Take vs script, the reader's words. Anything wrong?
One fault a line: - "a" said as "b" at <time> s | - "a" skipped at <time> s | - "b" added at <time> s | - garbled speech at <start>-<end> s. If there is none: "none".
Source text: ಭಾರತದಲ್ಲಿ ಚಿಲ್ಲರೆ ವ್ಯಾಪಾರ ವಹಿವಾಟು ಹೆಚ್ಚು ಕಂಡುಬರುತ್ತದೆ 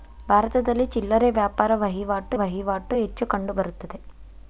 - "ವಹಿವಾಟು" added at 2.3 s